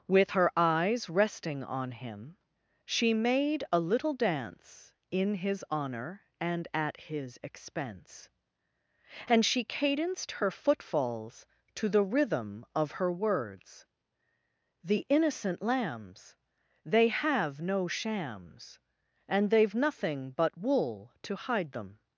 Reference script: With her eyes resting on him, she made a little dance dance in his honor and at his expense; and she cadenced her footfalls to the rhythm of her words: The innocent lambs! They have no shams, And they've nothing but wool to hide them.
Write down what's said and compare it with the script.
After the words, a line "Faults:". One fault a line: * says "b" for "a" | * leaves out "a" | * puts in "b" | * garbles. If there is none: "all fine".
With her eyes resting on him, she made a little dance in his honor and at his expense; and she cadenced her footfalls to the rhythm of her words: The innocent lambs! They have no shams, And they've nothing but wool to hide them.
Faults:
* leaves out "dance"